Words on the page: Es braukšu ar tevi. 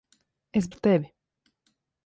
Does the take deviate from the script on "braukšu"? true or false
true